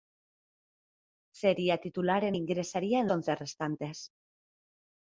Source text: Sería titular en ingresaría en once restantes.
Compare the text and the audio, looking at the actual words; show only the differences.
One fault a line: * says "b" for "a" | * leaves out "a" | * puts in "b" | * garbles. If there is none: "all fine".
all fine